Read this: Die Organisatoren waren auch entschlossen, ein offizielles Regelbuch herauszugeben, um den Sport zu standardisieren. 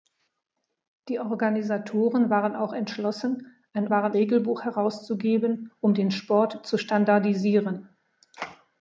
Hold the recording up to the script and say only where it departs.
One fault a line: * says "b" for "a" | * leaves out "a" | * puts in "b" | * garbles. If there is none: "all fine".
* says "waren" for "offizielles"